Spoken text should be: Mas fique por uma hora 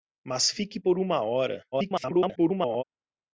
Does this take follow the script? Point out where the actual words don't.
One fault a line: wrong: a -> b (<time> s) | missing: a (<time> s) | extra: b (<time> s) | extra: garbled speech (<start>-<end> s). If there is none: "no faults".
extra: garbled speech (1.7-2.8 s)